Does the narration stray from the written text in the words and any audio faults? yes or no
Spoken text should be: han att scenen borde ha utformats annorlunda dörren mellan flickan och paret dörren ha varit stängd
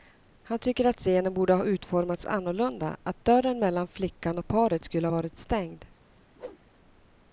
yes